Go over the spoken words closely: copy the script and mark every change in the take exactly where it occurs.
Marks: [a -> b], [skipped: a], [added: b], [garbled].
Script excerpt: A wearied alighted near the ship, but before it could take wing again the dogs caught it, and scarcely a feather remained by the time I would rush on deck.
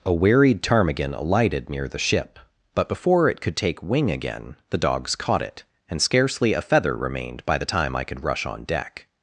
A wearied [added: ptarmigan] alighted near the ship, but before it could take wing again the dogs caught it, and scarcely a feather remained by the time I [would -> could] rush on deck.